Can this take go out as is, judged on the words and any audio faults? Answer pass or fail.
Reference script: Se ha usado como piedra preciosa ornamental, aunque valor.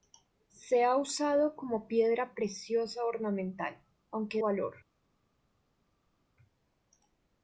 pass